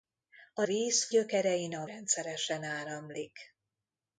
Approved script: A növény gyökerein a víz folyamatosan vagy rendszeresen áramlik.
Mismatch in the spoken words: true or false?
true